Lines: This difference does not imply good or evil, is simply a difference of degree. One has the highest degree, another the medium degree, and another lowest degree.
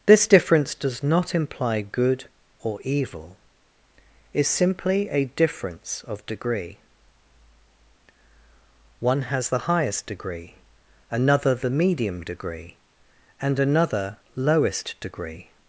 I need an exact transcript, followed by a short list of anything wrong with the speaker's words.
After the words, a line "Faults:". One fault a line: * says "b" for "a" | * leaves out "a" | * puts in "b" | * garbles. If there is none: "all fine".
This difference does not imply good or evil, is simply a difference of degree. One has the highest degree, another the medium degree, and another lowest degree.
Faults:
all fine